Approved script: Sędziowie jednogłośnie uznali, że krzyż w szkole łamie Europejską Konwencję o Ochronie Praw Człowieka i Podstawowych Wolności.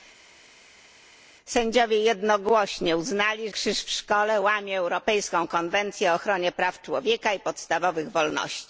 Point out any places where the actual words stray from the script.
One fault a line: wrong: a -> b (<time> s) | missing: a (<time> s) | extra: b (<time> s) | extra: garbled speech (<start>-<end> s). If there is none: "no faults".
missing: że (3.5 s)